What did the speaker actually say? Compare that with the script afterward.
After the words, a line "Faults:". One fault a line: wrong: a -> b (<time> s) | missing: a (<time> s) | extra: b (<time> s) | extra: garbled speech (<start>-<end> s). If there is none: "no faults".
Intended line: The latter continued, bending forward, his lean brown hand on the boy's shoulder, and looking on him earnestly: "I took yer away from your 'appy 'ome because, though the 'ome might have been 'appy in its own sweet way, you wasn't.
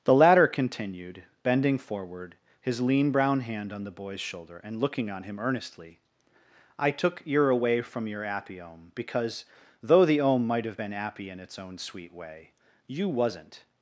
The latter continued, bending forward, his lean brown hand on the boy's shoulder, and looking on him earnestly: "I took yer away from your 'appy 'ome because, though the 'ome might have been 'appy in its own sweet way, you wasn't.
Faults:
no faults